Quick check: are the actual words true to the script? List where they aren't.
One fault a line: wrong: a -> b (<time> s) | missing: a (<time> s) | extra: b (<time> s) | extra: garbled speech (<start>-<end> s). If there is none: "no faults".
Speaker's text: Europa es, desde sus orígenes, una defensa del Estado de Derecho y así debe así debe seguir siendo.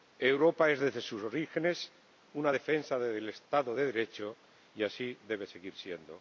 missing: así debe (5.5 s)